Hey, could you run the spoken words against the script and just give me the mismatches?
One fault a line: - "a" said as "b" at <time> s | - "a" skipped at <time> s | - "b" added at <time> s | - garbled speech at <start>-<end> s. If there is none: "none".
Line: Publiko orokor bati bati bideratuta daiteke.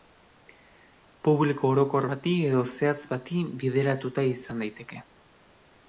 - "edo zehatz" added at 2.5 s
- "izan" added at 4.4 s